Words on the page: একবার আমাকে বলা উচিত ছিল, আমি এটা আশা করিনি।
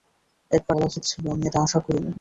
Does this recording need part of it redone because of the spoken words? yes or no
yes